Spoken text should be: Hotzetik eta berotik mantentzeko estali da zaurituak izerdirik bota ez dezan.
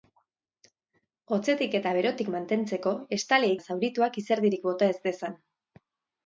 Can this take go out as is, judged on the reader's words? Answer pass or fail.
pass